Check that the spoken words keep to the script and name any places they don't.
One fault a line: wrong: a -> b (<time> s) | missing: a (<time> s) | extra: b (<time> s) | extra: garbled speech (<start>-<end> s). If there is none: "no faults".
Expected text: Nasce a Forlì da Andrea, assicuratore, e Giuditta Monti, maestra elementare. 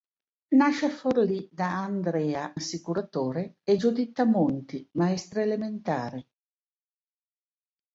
no faults